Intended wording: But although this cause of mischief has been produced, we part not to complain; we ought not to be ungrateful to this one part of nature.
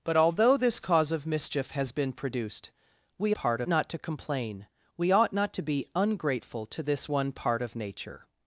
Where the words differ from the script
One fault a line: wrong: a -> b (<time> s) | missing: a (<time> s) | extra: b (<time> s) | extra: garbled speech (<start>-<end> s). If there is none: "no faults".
no faults